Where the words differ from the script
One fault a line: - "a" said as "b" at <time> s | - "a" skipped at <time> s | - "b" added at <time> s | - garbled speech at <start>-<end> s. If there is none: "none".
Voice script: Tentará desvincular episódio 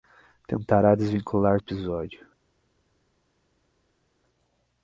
none